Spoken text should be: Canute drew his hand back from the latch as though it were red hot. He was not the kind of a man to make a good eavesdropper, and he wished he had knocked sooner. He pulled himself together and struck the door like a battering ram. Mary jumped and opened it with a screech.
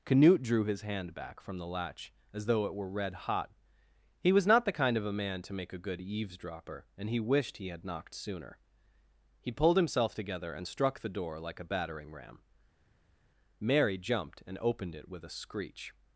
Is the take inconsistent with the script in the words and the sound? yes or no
no